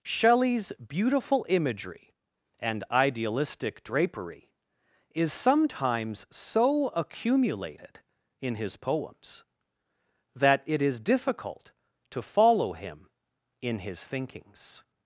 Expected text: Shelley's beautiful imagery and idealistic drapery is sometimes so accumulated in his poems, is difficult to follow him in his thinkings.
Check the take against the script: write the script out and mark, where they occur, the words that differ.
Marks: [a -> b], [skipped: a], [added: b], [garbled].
Shelley's beautiful imagery and idealistic drapery is sometimes so accumulated in his poems, [added: that it] is difficult to follow him in his thinkings.